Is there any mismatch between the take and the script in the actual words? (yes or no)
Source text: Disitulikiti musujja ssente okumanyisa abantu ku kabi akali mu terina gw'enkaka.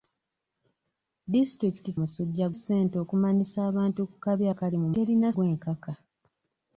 no